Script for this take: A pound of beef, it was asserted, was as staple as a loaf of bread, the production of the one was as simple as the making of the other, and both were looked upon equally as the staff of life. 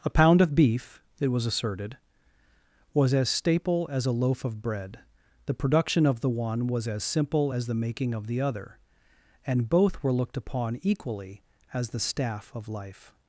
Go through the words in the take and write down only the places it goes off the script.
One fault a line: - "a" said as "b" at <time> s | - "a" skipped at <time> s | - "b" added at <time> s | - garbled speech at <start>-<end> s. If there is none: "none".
none